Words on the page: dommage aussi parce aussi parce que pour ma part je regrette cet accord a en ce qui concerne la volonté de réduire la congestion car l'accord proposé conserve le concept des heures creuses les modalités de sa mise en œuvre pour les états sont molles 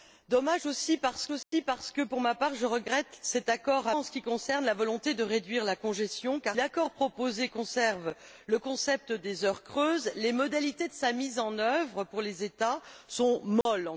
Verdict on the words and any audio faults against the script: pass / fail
fail